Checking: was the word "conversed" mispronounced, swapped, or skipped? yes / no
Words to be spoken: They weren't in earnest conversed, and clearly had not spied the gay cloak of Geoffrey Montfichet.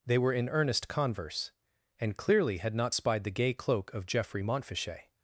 yes